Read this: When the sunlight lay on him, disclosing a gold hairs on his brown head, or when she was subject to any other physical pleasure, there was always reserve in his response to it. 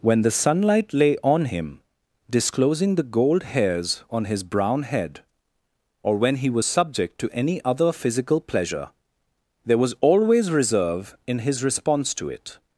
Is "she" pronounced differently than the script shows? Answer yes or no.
yes